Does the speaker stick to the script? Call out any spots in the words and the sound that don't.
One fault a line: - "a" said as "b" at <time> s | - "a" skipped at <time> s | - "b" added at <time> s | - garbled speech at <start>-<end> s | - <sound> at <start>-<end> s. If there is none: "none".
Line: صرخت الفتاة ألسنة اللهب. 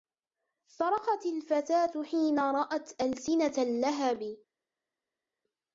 - "حين رأت" added at 2.0 s